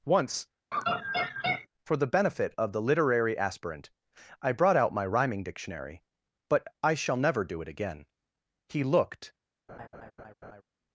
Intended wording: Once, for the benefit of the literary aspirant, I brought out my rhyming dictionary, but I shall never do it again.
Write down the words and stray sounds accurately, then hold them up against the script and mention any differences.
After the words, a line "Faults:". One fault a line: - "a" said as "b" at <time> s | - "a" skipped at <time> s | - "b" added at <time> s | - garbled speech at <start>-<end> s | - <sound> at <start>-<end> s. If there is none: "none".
Once, for the benefit of the literary aspirant, I brought out my rhyming dictionary, but I shall never do it again. He looked
Faults:
- laugh at 0.7-1.7 s
- "He looked" added at 8.7 s
- laugh at 9.7-10.6 s